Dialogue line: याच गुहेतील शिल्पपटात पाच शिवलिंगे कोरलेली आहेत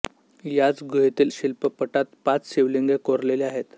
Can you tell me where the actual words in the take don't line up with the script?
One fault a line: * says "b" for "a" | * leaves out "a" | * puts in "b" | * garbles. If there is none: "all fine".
all fine